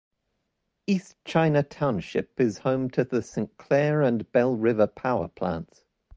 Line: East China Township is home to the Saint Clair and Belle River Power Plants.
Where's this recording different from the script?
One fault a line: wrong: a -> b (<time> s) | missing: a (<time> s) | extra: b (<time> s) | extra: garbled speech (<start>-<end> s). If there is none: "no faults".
no faults